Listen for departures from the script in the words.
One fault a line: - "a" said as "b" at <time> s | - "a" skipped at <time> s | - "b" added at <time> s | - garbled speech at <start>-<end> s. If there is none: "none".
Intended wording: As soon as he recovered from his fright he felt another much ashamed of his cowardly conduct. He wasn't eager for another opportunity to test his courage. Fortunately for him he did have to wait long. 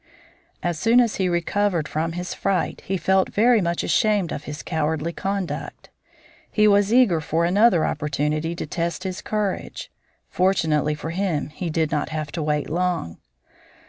- "another" said as "very" at 3.3 s
- "wasn't" said as "was" at 6.7 s
- "not" added at 11.9 s